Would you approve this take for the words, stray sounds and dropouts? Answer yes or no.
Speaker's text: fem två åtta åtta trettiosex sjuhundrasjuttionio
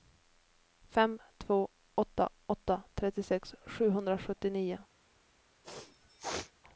no